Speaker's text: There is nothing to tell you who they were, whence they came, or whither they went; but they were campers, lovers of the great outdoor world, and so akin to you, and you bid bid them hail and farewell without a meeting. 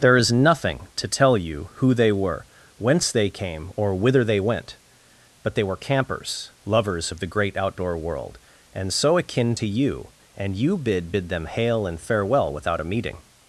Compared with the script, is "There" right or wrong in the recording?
right